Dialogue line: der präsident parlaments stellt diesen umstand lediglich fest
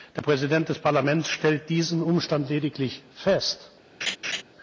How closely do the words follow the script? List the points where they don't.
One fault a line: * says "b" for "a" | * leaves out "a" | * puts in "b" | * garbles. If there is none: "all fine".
* puts in "des"